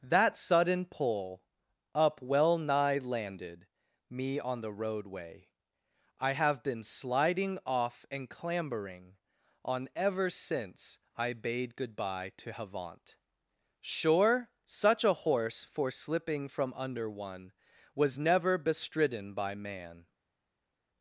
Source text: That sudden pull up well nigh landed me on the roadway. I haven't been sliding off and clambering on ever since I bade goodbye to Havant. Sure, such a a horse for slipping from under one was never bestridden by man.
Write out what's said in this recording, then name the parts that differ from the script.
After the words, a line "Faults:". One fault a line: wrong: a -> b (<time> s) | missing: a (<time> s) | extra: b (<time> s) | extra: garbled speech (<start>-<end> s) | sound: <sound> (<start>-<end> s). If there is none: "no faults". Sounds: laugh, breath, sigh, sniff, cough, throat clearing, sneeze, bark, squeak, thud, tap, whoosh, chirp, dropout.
That sudden pull up well nigh landed me on the roadway. I have been sliding off and clambering on ever since I bade goodbye to Havant. Sure, such a horse for slipping from under one was never bestridden by man.
Faults:
wrong: haven't -> have (6.3 s)
missing: a (15.2 s)